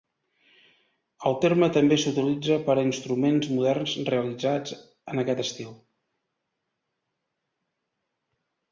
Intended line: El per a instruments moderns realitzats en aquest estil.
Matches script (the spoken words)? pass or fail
fail